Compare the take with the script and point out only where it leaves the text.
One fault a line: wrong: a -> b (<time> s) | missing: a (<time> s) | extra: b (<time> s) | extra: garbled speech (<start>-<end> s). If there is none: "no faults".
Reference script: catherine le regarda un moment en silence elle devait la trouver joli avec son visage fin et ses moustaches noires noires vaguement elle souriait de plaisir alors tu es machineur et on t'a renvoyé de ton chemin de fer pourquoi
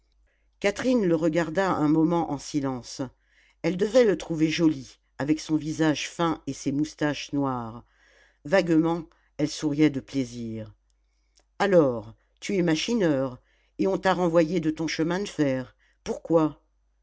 wrong: la -> le (4.0 s)
missing: noires (7.8 s)